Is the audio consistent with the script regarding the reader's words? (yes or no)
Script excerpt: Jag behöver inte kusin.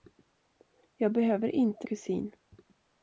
yes